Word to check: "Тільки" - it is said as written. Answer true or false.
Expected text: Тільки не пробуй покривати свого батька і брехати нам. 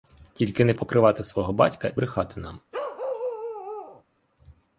true